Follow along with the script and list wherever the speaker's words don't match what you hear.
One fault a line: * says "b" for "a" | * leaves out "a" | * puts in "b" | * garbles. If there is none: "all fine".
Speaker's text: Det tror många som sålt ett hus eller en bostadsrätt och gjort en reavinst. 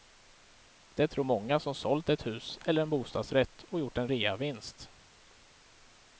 all fine